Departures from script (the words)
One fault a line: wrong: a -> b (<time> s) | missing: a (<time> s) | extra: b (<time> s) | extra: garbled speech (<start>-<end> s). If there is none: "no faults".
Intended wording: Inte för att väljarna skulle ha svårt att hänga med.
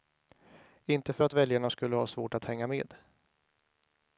no faults